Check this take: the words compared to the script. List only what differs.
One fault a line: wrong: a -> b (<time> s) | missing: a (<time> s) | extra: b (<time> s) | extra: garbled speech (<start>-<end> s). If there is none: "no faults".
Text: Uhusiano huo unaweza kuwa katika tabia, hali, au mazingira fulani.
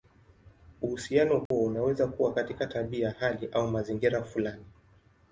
no faults